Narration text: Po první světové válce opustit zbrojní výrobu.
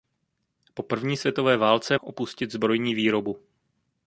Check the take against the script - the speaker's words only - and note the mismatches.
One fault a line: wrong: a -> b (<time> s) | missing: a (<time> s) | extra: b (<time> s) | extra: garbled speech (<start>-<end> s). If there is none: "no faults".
no faults